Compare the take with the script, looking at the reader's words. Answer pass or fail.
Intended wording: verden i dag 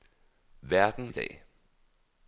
pass